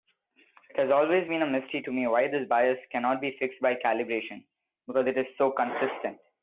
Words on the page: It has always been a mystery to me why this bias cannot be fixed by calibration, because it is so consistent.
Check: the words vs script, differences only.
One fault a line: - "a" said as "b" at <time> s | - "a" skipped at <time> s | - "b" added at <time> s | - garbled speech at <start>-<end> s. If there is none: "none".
none